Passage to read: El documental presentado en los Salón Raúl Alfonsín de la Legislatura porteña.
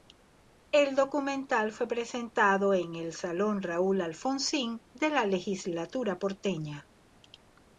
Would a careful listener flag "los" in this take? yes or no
yes